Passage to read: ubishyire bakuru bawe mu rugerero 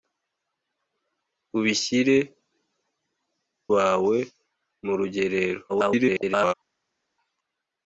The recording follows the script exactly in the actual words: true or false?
false